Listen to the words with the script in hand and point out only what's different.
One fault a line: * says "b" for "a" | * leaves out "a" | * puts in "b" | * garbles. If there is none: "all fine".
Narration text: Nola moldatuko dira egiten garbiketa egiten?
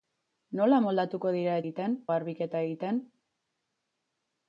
all fine